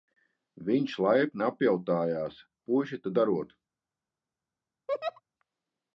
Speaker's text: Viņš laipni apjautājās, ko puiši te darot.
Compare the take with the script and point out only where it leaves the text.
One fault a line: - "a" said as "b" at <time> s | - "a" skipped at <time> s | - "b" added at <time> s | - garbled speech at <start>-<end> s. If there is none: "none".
- "ko" skipped at 2.4 s